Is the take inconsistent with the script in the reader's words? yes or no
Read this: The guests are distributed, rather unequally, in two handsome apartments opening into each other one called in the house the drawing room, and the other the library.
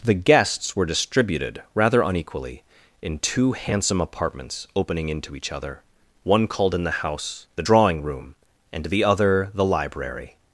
yes